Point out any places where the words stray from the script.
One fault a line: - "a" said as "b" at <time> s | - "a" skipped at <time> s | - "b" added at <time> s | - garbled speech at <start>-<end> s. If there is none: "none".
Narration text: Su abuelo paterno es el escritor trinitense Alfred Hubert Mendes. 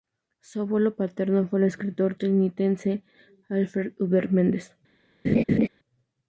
- "es" said as "fue" at 1.5 s